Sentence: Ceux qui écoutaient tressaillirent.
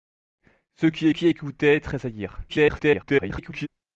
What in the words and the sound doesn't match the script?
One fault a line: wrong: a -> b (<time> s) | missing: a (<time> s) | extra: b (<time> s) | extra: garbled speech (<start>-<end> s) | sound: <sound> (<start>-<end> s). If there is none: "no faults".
extra: qui (1.1 s)
extra: garbled speech (2.5-3.7 s)